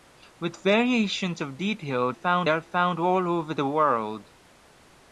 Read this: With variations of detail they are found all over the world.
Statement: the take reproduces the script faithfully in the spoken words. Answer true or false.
false